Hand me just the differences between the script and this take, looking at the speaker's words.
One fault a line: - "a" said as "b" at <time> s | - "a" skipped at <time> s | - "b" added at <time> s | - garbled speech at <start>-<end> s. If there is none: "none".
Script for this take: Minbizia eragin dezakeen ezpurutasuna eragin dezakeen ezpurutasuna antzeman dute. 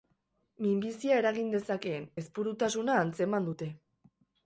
- "eragin dezakeen ezpurutasuna" skipped at 3.0 s